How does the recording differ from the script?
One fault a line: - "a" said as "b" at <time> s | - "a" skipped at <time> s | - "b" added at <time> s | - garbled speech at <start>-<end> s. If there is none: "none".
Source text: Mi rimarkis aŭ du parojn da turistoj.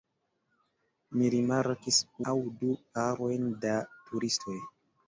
none